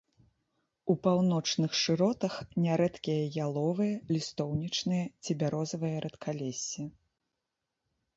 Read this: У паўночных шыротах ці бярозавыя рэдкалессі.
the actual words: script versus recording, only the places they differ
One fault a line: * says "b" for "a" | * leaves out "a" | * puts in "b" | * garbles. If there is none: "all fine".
* puts in "нярэдкія яловыя лістоўнічныя"